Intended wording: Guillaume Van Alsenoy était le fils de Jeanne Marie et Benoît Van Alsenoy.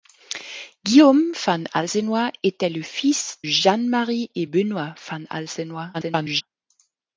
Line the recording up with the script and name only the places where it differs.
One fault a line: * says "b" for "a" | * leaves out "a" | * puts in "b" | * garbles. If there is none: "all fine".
* leaves out "de"
* garbles